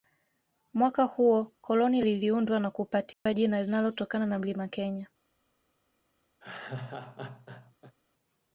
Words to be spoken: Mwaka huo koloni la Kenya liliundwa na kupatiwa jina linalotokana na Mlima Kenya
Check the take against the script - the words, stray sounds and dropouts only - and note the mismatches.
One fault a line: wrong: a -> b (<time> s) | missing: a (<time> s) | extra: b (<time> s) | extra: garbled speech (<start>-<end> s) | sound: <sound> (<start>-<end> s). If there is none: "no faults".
missing: la Kenya (2.0 s)
sound: dropout (3.1-3.3 s)
sound: laugh (6.4-7.9 s)